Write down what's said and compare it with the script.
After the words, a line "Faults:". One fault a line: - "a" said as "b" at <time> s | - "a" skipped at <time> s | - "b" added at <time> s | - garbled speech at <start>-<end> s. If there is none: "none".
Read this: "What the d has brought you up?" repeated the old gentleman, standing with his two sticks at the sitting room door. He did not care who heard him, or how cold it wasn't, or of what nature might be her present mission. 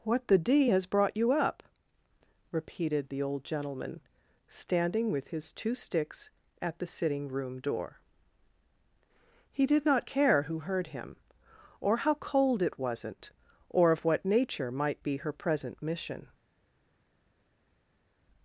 "What the d has brought you up?" repeated the old gentleman, standing with his two sticks at the sitting room door. He did not care who heard him, or how cold it wasn't, or of what nature might be her present mission.
Faults:
none